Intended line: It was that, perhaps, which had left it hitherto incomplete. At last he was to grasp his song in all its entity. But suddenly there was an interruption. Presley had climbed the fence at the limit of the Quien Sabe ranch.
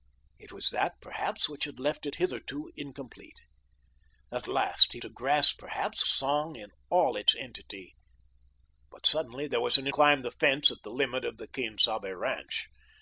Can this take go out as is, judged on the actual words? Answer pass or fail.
fail